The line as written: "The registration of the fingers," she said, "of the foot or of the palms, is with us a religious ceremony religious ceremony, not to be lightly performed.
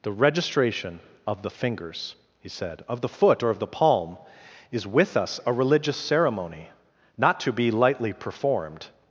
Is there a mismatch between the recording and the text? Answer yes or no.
yes